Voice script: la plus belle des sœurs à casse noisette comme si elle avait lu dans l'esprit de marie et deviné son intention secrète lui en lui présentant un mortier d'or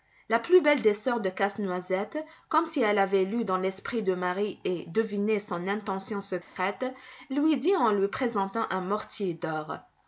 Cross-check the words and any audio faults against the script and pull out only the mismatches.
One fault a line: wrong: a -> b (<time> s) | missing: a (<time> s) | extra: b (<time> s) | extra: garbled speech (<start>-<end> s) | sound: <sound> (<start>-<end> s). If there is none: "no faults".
wrong: à -> de (1.2 s)
sound: dropout (6.4-6.6 s)
extra: dit (7.6 s)